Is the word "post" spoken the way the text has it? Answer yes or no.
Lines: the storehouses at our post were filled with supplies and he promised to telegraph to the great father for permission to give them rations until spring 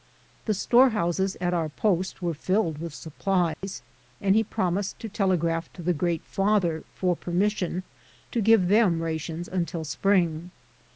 yes